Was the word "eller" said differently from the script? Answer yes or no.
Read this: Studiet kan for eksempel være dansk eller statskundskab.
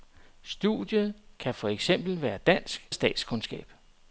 yes